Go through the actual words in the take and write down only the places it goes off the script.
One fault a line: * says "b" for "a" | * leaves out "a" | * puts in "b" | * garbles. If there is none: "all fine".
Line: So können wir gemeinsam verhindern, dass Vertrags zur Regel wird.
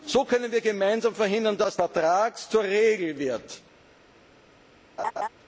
all fine